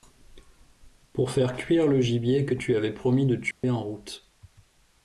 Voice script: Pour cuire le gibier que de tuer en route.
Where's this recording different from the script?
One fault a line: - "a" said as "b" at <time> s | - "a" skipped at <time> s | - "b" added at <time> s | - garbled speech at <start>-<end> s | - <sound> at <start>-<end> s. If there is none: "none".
- "faire" added at 1.3 s
- "tu avais promis" added at 2.5 s
- dropout at 3.5-3.6 s